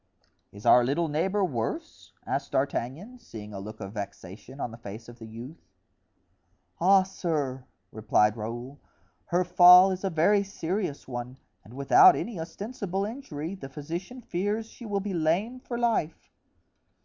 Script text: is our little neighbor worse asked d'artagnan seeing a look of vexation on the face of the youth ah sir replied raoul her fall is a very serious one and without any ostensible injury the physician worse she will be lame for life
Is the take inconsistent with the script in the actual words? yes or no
yes